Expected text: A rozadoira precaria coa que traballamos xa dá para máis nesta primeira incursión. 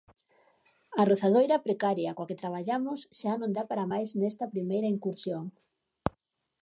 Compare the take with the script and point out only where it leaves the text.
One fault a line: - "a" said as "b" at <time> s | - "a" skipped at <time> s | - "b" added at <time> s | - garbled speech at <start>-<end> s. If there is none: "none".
- "non" added at 3.4 s